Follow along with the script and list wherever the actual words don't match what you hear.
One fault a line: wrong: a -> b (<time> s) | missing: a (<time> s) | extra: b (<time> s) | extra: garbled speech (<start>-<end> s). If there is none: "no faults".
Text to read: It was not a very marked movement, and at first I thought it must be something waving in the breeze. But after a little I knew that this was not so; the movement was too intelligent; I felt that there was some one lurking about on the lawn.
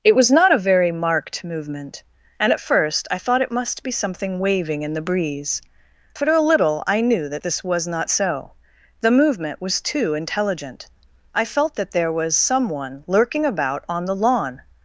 wrong: But after -> For (6.1 s)